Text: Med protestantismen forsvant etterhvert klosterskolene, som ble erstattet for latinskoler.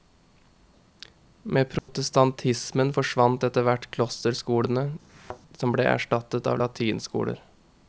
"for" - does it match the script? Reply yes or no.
no